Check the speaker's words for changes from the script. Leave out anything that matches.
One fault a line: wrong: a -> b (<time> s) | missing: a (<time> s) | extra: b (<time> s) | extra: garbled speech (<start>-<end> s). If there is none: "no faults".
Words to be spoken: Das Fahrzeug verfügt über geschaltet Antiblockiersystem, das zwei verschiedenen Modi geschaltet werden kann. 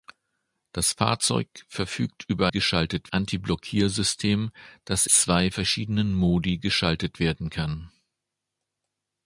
no faults